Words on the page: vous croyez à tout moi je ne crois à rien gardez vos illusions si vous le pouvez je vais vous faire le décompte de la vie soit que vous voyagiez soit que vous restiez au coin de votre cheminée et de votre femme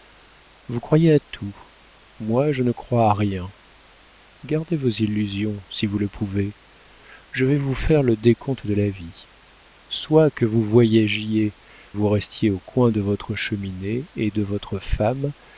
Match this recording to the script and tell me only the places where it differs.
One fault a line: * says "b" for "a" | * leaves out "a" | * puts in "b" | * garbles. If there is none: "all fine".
* leaves out "soit que"